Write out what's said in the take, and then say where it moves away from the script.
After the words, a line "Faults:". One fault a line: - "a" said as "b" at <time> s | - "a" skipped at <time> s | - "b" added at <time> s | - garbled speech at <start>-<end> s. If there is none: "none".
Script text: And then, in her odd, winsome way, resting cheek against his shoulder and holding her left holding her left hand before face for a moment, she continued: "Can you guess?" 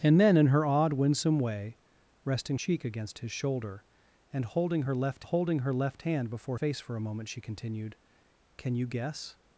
And then, in her odd, winsome way, resting cheek against his shoulder and holding her left holding her left hand before face for a moment, she continued: "Can you guess?"
Faults:
none